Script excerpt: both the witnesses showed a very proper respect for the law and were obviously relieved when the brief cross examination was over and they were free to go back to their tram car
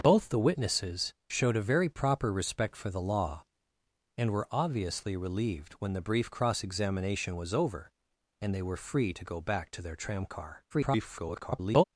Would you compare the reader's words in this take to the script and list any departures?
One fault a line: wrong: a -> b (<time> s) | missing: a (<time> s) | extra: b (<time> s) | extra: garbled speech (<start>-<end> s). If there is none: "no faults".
extra: garbled speech (10.7-11.8 s)